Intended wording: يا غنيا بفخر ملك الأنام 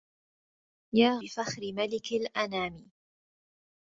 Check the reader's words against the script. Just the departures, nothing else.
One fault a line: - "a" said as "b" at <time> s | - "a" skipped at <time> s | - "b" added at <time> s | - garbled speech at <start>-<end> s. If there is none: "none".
- "غنيا" skipped at 1.2 s